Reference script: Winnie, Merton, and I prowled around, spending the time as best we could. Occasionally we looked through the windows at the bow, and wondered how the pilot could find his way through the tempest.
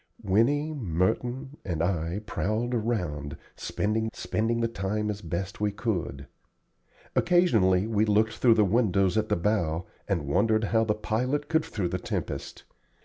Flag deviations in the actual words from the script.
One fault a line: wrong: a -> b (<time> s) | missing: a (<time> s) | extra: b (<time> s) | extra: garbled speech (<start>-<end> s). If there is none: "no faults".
extra: spending (4.1 s)
missing: find his way (11.7 s)